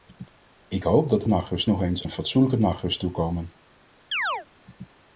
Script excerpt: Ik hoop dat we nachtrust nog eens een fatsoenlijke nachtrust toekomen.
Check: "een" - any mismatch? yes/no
no